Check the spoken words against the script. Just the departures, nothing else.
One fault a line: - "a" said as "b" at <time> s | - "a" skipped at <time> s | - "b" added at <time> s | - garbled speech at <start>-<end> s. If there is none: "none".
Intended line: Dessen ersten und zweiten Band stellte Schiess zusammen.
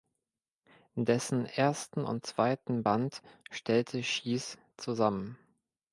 none